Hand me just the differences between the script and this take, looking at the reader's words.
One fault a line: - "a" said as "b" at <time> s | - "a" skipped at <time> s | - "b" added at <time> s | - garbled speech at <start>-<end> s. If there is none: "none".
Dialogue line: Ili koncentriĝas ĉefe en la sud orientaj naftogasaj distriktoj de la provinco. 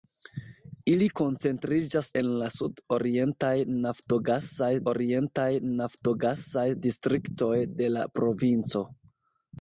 - "ĉefe" skipped at 2.1 s
- "orientaj naftogasaj" added at 4.9 s